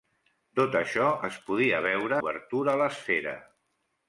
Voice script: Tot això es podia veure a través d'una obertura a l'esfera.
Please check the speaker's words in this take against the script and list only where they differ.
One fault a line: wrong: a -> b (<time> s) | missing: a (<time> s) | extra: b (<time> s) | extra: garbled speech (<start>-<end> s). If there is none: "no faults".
missing: a través d'una (2.2 s)